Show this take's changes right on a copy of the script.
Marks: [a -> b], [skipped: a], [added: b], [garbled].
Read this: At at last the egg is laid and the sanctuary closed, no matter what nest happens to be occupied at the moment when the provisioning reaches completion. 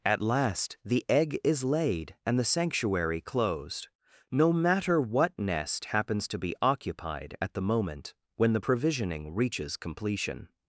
At [skipped: at] last the egg is laid and the sanctuary closed, no matter what nest happens to be occupied at the moment when the provisioning reaches completion.